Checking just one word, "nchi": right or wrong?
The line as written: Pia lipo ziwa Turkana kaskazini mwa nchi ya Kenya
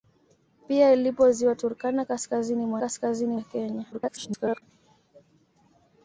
wrong